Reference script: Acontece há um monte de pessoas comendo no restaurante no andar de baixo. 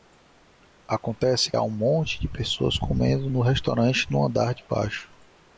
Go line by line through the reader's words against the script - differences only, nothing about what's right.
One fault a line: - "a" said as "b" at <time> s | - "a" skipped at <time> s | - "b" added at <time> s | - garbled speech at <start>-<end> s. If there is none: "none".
none